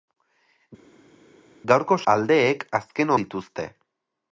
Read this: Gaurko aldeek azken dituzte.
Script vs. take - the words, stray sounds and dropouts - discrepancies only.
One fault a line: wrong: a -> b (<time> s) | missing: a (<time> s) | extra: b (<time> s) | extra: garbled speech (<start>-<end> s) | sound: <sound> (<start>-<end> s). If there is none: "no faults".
no faults